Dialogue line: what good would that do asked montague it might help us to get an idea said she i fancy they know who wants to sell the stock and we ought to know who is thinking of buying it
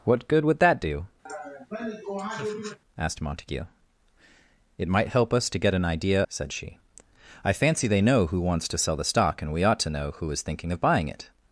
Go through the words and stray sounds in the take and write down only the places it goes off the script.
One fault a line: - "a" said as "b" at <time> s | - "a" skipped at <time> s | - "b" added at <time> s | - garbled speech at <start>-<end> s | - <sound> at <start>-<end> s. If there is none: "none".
- laugh at 1.3-2.8 s